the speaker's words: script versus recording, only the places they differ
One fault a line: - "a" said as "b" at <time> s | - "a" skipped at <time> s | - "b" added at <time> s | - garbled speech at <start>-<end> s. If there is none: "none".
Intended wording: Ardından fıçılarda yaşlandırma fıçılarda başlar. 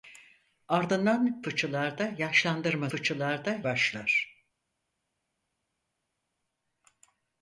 none